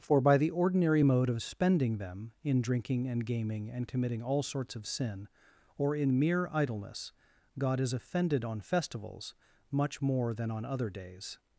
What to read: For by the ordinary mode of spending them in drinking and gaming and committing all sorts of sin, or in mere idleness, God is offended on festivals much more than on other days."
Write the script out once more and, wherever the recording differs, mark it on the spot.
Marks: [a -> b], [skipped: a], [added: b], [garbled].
For by the ordinary mode of spending them in drinking and gaming and committing all sorts of sin, or in mere idleness, God is offended on festivals much more than on other days."